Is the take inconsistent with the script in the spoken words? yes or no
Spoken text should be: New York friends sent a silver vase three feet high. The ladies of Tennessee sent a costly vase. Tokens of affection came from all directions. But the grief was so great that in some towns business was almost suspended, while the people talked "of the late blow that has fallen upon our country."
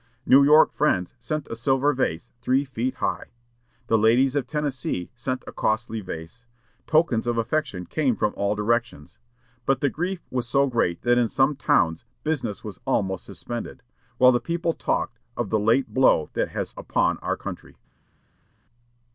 yes